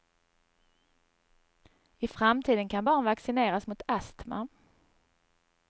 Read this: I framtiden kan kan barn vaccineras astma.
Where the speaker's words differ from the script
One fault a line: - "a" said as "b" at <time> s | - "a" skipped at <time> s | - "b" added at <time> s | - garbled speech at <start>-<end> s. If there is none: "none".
- "kan" skipped at 2.9 s
- "mot" added at 3.7 s